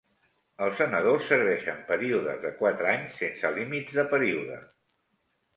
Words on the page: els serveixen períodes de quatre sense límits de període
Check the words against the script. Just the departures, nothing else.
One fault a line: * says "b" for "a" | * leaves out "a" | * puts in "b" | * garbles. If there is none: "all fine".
* puts in "senadors"
* puts in "anys"